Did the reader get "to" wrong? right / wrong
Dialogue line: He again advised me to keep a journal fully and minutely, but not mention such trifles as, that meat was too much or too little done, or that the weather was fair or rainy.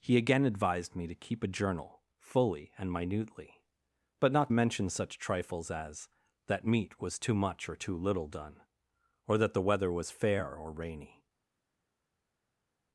right